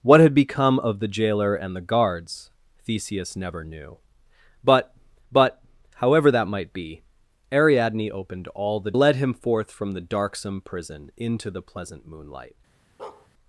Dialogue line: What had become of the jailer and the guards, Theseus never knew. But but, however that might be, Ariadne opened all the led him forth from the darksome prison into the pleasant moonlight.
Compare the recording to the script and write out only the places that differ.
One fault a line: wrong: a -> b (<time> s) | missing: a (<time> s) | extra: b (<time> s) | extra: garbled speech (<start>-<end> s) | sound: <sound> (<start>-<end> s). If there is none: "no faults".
sound: bark (13.0-13.3 s)